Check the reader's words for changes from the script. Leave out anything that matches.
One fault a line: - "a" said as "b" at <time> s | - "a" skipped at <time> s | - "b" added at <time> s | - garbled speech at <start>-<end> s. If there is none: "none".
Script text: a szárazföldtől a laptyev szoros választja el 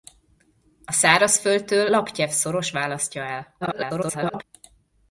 - "a" skipped at 1.9 s
- garbled speech at 3.6-4.4 s